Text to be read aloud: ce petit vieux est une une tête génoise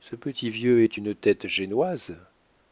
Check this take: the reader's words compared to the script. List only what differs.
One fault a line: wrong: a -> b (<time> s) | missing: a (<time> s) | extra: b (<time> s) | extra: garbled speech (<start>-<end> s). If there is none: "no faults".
missing: une (1.2 s)